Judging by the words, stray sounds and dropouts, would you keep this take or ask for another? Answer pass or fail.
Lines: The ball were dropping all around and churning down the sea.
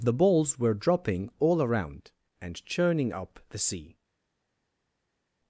fail